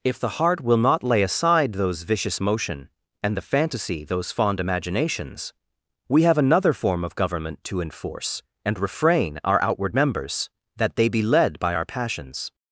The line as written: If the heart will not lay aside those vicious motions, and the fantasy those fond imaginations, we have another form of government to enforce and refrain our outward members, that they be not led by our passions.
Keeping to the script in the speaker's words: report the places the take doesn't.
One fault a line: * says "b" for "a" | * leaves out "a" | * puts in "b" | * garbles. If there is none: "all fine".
* says "motion" for "motions"
* leaves out "not"